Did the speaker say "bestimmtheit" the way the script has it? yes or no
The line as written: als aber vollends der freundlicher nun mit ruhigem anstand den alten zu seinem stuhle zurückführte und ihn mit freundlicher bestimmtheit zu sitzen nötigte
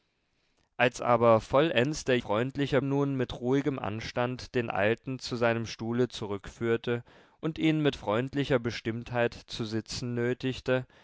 yes